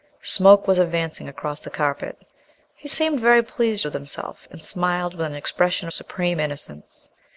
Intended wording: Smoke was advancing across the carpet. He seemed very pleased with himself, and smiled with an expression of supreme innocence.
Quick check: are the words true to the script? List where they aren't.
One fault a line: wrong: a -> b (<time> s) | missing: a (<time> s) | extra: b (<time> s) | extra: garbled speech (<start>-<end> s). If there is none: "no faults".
no faults